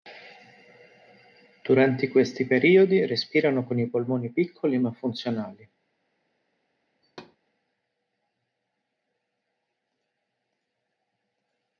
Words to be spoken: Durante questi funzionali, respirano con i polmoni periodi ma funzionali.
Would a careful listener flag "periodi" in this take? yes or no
yes